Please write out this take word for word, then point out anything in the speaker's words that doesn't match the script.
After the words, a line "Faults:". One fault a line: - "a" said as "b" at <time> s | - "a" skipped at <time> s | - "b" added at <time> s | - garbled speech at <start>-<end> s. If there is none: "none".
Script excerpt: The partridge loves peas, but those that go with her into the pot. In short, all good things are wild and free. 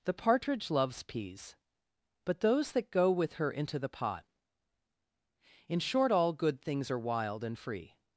The partridge loves peas, but those that go with her into the pot. In short, all good things are wild and free.
Faults:
none